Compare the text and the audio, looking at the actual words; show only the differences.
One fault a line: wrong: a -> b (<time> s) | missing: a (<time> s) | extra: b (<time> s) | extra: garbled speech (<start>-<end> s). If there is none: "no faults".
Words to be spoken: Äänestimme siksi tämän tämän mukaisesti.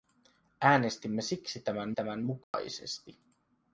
no faults